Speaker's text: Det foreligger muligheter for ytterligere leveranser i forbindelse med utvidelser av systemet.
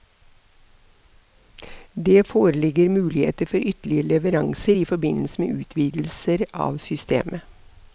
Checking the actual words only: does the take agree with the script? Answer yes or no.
yes